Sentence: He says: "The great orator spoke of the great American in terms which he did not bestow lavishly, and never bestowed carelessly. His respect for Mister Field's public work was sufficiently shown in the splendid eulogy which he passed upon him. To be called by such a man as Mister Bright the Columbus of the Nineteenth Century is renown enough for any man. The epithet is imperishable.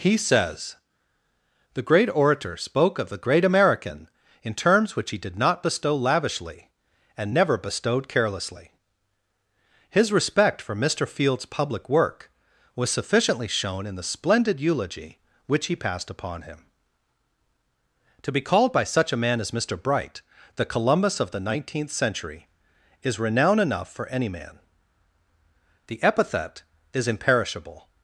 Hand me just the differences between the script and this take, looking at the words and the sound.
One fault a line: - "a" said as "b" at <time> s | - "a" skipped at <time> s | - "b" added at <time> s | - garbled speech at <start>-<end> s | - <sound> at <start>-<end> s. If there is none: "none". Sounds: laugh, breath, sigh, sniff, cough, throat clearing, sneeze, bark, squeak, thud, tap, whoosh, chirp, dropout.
none